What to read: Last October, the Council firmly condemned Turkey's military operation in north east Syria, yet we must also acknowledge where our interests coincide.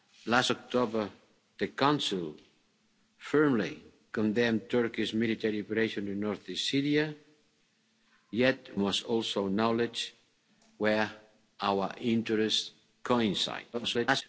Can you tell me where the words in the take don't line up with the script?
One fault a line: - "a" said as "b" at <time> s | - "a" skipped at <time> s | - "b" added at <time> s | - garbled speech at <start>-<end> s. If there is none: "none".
- "we" skipped at 8.8 s
- garbled speech at 13.7-14.2 s